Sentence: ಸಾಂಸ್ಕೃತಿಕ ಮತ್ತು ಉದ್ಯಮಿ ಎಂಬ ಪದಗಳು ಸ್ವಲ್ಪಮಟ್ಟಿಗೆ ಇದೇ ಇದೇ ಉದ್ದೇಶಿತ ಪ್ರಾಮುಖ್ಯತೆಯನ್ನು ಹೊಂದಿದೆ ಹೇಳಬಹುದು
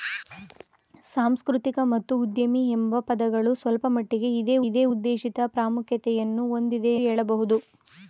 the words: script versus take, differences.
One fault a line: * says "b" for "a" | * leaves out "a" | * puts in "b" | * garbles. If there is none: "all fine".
all fine